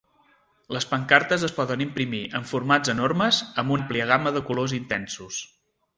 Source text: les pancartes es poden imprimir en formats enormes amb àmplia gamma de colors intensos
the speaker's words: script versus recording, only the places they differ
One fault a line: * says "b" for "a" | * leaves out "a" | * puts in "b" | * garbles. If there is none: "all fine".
all fine